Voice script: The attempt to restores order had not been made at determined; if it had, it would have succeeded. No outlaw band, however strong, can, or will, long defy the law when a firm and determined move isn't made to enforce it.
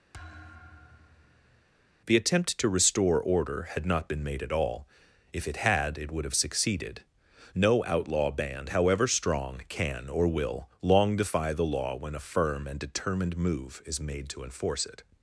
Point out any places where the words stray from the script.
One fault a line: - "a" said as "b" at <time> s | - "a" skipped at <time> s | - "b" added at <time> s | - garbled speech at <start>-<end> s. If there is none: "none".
- "restores" said as "restore" at 2.7 s
- "determined" said as "all" at 4.5 s
- "isn't" said as "is" at 13.8 s